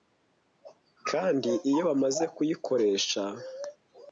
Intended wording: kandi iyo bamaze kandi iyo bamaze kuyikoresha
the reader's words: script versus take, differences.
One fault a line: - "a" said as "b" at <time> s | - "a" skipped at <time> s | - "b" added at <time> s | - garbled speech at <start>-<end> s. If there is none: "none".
- "kandi iyo bamaze" skipped at 2.2 s